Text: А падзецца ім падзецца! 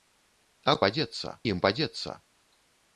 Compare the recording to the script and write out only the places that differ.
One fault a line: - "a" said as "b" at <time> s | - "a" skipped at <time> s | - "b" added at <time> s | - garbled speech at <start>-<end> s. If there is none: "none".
none